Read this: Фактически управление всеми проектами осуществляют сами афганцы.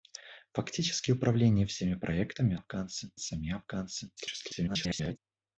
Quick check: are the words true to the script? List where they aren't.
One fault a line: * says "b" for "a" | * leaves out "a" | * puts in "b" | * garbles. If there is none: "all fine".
* says "афганцы" for "осуществляют"
* garbles